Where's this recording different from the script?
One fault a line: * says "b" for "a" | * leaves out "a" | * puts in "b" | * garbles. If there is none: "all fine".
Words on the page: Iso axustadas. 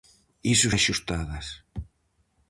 all fine